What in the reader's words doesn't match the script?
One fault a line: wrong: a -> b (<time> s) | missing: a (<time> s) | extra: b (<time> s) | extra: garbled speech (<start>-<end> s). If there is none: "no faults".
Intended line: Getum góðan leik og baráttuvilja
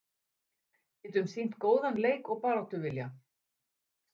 extra: sýnt (1.3 s)